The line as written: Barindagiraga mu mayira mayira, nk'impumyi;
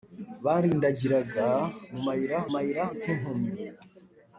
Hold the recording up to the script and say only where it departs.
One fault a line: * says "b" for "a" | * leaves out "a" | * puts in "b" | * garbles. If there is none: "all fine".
all fine